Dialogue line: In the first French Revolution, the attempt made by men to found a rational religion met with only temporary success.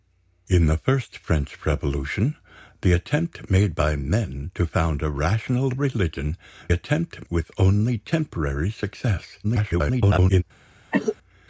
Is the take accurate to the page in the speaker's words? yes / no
no